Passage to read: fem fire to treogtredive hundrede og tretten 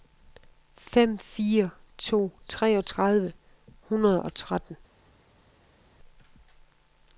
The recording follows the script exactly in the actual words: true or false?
true